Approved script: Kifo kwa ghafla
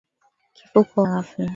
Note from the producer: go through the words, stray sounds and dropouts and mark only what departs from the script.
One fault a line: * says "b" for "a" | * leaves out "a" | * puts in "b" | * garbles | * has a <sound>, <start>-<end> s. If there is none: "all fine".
all fine